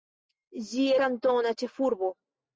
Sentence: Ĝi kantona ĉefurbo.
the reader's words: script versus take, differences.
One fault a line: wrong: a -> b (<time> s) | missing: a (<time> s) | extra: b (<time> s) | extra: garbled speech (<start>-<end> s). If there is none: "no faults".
no faults